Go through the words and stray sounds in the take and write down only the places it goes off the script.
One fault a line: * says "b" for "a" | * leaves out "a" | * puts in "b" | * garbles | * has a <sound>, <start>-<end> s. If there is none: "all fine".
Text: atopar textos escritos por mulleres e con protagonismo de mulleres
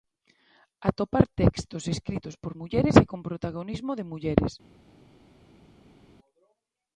all fine